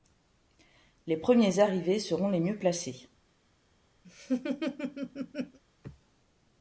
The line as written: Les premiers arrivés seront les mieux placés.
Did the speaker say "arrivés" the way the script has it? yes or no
yes